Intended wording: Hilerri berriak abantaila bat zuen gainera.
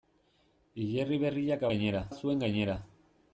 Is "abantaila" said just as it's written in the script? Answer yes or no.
no